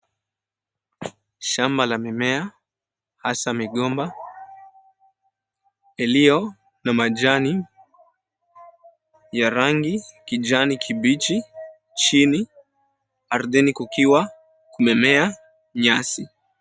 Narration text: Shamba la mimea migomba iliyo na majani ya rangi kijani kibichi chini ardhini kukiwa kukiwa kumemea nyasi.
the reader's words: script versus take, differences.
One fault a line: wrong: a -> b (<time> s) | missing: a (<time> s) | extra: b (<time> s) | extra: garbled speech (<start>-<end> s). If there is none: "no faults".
extra: hasa (3.2 s)
missing: kukiwa (14.3 s)